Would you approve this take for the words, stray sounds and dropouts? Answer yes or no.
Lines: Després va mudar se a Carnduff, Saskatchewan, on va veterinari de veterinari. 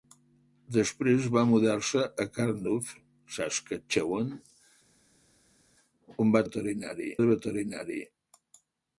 yes